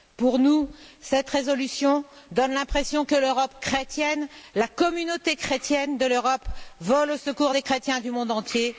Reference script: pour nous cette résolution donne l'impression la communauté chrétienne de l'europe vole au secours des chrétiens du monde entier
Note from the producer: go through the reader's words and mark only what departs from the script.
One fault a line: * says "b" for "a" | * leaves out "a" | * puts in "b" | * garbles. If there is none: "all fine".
* puts in "que l'europe chrétienne"